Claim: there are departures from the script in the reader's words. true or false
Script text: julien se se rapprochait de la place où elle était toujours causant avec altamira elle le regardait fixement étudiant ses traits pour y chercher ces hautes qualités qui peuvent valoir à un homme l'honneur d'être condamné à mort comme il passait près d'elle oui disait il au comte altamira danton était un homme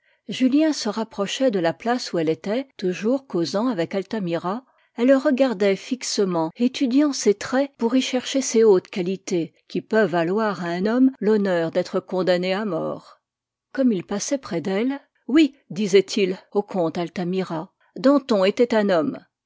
true